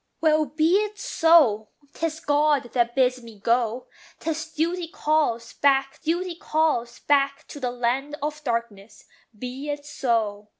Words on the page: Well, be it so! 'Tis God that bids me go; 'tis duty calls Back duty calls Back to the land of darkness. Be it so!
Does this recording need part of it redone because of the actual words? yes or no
no